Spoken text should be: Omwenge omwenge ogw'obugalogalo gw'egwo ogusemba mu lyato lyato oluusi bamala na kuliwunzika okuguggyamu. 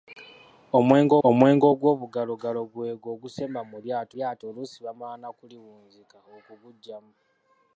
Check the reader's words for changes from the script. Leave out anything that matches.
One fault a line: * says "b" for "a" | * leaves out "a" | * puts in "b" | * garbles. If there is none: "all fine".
all fine